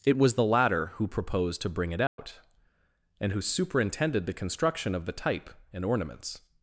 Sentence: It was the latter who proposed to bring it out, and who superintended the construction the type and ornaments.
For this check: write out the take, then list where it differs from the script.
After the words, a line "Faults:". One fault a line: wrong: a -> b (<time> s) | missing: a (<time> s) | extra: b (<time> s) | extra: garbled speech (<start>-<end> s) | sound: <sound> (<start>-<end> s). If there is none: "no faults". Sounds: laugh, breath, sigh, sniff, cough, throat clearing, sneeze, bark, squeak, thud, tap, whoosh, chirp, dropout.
It was the latter who proposed to bring it out, and who superintended the construction of the type and ornaments.
Faults:
sound: dropout (2.1-2.2 s)
extra: of (4.9 s)